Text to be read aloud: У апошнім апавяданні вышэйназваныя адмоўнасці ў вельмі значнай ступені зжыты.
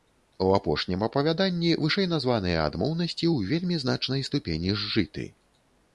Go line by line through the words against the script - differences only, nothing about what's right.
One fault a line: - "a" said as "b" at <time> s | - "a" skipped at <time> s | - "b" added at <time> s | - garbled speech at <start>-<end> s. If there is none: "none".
none